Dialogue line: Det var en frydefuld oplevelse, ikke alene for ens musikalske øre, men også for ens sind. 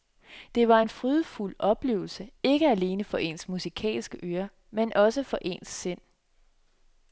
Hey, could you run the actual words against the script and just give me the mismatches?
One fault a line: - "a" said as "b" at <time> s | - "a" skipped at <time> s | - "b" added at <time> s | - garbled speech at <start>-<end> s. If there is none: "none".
none